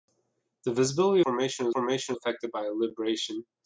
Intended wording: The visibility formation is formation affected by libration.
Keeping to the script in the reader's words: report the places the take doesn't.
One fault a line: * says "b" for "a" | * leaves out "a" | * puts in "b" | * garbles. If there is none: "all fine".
all fine